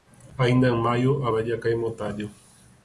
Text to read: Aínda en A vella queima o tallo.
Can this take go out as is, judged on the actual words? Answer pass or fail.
fail